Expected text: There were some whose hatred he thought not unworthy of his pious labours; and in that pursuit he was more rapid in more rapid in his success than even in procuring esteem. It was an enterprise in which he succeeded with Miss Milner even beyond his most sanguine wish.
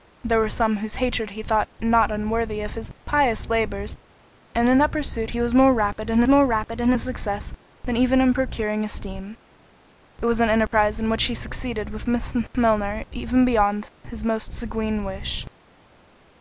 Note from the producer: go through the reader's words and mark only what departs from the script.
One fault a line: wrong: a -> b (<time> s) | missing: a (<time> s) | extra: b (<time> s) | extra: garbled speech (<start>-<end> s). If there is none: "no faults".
no faults